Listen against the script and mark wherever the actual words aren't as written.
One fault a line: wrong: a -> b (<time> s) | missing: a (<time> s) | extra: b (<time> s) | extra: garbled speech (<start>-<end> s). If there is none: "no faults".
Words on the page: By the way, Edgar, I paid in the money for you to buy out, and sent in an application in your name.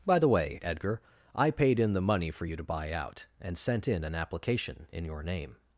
no faults